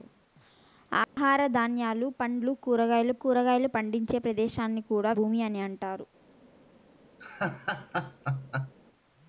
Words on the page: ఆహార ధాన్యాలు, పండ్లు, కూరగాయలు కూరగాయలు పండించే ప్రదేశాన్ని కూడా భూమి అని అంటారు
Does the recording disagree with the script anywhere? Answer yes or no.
no